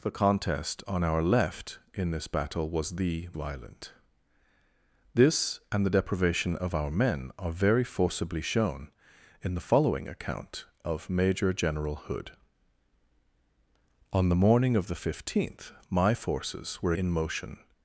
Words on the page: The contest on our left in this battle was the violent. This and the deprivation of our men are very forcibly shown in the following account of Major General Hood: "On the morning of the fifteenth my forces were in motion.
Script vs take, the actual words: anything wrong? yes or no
no